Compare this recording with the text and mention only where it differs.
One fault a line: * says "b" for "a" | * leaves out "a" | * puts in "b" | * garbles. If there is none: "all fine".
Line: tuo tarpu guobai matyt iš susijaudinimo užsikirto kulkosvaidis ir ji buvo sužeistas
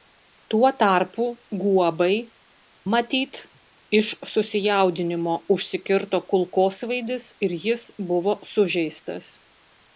* says "jis" for "ji"